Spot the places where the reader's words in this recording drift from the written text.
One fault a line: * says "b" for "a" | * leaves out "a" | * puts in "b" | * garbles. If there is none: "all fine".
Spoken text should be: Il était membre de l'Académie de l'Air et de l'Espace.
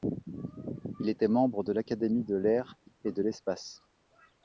all fine